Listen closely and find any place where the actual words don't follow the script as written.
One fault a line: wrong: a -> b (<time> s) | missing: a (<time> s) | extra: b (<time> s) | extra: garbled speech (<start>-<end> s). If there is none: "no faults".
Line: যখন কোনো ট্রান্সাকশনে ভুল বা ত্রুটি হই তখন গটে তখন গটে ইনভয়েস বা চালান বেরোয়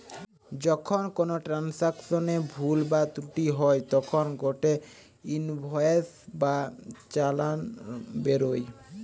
missing: তখন গটে (4.7 s)